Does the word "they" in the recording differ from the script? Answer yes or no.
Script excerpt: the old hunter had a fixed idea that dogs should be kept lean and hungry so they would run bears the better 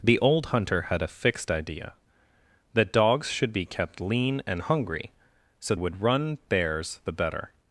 yes